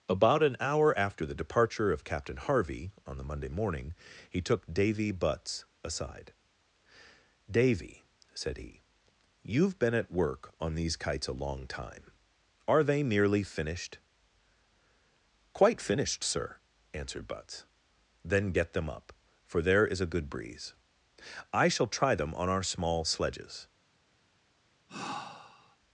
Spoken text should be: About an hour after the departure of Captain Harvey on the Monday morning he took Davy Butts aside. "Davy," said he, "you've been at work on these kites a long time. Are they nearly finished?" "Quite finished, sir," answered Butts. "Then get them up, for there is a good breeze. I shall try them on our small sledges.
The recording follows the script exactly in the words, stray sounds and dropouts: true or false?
false